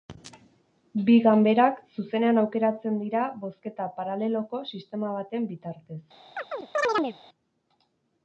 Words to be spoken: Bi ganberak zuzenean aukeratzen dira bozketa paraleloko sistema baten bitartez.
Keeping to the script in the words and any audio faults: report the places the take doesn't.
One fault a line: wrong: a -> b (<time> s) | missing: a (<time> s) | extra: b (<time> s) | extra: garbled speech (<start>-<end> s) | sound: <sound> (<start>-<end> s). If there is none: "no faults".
sound: chirp (6.4-7.2 s)